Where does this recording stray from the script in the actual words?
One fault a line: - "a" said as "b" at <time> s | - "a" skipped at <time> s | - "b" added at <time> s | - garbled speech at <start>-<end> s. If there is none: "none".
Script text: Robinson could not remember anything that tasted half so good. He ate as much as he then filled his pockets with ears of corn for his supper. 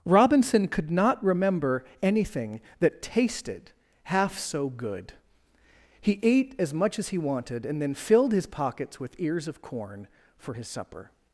- "wanted and" added at 7.2 s